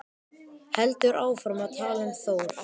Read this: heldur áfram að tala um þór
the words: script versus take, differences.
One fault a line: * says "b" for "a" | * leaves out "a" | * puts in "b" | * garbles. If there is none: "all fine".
all fine